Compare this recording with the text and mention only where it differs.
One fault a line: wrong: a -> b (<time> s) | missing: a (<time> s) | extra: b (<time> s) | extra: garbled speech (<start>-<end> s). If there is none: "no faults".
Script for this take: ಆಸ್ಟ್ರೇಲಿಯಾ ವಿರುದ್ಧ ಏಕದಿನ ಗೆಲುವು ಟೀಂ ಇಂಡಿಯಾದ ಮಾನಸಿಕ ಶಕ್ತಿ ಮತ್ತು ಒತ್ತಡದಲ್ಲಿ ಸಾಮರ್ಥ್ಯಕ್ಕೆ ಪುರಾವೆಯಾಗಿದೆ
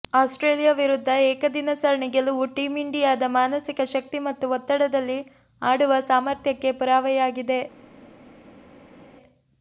extra: ಸರಣಿ (1.8 s)
extra: ಆಡುವ (5.6 s)